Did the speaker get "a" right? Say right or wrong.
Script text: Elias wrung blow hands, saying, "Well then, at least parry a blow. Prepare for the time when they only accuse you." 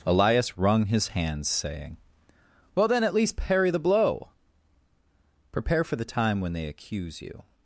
wrong